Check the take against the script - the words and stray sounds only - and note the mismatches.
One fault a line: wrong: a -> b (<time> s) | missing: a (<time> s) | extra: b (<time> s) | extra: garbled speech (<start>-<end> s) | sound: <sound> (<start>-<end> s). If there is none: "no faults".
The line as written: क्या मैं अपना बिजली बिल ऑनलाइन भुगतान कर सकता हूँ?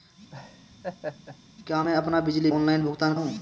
sound: laugh (0.3-1.4 s)
missing: बिल (2.5 s)
missing: कर सकता (3.1 s)